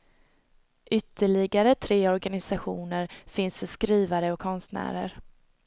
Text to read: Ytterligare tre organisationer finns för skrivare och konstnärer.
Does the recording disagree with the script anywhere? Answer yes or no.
no